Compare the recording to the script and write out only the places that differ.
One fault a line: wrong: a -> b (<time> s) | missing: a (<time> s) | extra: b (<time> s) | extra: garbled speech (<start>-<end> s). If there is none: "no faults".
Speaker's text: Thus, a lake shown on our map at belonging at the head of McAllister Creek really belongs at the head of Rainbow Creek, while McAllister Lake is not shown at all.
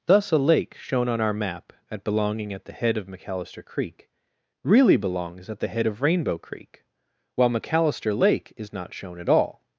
no faults